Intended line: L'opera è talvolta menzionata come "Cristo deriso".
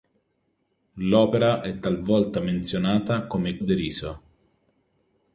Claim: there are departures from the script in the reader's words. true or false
true